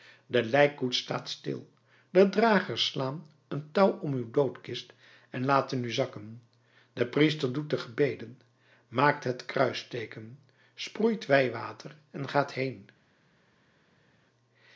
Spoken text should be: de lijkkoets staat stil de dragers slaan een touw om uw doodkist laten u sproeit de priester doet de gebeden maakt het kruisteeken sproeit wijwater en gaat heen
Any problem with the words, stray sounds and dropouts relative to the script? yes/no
yes